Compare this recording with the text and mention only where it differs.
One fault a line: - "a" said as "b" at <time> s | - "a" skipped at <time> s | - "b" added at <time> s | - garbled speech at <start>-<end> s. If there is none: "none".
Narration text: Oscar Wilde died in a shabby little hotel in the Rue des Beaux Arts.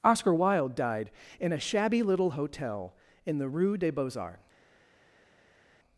none